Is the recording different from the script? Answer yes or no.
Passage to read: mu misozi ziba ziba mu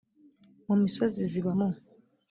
yes